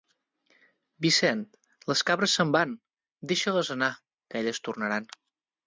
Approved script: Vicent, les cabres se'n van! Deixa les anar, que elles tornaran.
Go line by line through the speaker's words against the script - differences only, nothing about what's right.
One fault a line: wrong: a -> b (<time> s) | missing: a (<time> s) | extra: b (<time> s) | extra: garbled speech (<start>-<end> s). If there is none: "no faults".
no faults